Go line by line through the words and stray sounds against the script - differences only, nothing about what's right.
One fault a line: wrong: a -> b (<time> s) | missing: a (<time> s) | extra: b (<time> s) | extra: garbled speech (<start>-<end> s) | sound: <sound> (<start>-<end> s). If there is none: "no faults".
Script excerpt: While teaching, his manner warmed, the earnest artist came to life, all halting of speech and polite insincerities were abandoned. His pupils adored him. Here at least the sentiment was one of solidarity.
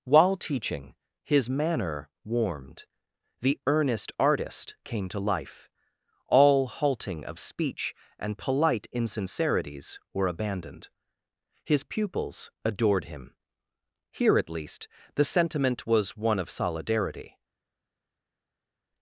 no faults